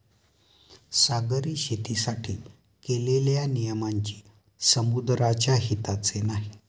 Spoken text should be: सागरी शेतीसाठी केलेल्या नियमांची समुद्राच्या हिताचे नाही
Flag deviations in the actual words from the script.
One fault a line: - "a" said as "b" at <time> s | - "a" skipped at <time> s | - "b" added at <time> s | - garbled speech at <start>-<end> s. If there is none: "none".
none